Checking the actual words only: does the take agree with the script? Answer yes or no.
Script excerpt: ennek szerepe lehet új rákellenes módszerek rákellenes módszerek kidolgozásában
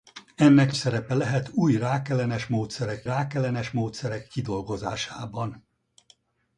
yes